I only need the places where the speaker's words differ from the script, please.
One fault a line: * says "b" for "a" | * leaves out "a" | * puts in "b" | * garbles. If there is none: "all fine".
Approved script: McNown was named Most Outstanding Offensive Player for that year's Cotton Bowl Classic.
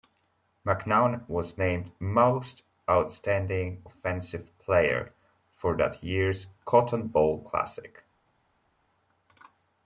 all fine